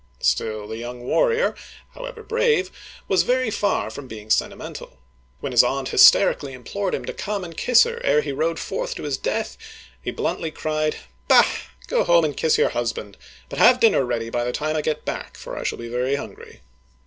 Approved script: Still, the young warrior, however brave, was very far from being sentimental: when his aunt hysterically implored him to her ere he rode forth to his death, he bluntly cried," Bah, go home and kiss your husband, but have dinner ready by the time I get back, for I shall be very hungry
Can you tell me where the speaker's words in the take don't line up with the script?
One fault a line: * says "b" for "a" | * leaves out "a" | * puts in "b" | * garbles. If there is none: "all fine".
* puts in "come and kiss"